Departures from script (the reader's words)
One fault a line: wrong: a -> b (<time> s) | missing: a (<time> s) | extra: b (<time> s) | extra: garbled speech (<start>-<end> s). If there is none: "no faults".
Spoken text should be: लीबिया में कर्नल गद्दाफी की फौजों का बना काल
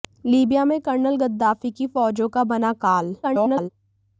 extra: garbled speech (3.2-3.7 s)